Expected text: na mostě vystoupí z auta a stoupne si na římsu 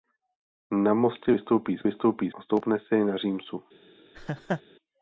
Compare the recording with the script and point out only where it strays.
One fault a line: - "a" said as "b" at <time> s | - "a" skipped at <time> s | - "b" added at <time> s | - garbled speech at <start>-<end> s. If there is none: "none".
- "auta" said as "vystoupí" at 1.8 s